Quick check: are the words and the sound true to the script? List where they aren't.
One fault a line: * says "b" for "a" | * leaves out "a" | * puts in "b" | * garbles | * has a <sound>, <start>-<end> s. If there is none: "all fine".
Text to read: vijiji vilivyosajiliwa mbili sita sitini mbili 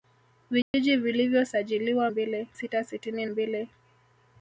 * has a dropout, 0.6-0.7 s